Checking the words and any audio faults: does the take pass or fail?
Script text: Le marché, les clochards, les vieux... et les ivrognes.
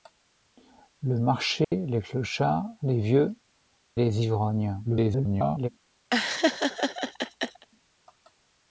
fail